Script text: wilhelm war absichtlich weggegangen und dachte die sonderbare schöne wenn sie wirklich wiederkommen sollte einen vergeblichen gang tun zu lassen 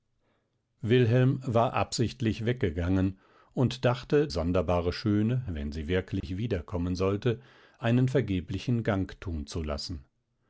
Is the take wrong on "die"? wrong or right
wrong